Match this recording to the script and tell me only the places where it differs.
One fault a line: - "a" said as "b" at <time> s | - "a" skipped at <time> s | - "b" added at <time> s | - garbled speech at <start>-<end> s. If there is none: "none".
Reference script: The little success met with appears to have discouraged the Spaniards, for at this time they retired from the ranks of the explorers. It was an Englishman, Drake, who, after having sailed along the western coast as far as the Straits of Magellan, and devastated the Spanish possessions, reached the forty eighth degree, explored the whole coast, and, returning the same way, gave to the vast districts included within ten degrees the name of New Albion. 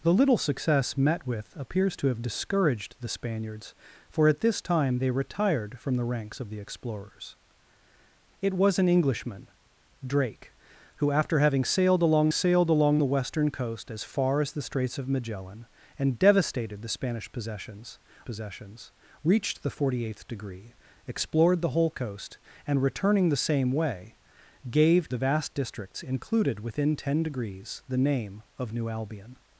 - "sailed along" added at 12.3 s
- "possessions" added at 18.2 s
- "to" skipped at 25.1 s